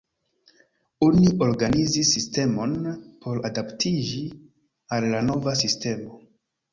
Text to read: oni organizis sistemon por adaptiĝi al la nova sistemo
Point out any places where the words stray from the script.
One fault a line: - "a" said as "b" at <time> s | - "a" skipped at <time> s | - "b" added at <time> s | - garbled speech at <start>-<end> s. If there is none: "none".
none